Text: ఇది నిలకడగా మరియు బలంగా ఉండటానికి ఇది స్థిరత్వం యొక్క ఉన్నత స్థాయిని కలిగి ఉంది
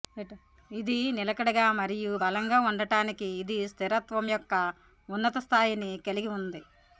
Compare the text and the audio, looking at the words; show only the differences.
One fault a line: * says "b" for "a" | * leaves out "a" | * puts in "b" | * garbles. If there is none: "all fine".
all fine